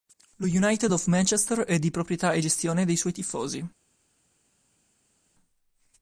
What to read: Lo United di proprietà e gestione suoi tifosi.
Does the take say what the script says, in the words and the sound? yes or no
no